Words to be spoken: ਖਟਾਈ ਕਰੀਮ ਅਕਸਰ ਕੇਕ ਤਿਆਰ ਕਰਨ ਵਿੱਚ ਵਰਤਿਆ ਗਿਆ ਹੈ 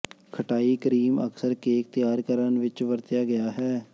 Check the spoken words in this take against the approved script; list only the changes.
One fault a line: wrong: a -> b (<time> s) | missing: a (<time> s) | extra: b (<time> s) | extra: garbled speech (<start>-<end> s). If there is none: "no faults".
no faults